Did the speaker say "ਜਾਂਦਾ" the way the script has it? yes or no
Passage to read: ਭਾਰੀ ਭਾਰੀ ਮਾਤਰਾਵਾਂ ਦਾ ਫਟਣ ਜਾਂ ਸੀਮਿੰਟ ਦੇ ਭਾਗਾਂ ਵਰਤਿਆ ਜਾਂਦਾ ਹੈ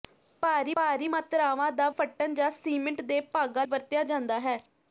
yes